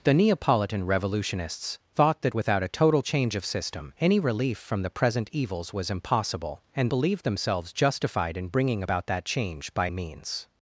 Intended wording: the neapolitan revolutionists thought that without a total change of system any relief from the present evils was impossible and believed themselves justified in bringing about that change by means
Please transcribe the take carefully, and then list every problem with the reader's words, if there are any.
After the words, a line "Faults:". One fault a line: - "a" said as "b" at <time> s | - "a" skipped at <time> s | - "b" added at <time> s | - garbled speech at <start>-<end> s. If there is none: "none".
the neapolitan revolutionists thought that without a total change of system any relief from the present evils was impossible and believed themselves justified in bringing about that change by means
Faults:
none